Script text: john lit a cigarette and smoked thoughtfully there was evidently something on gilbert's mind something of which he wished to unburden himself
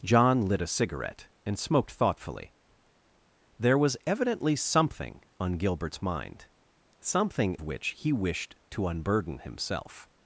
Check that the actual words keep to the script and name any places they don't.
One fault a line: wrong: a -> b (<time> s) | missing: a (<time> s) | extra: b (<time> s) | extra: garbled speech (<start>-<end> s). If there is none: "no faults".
missing: of (7.5 s)